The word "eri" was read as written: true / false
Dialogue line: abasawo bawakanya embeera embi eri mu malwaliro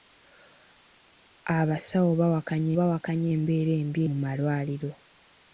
false